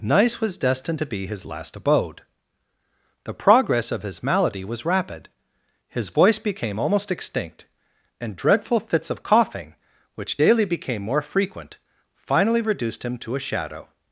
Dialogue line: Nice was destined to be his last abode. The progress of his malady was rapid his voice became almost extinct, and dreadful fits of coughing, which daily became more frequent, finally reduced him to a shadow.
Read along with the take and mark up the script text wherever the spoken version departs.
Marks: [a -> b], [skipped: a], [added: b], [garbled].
Nice was destined to be his last abode. The progress of his malady was rapid his voice became almost extinct, and dreadful fits of coughing, which daily became more frequent, finally reduced him to a shadow.